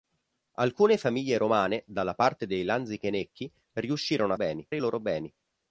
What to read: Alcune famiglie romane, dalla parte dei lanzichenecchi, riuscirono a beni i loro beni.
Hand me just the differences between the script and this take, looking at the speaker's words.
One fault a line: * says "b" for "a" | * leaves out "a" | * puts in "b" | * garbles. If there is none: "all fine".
all fine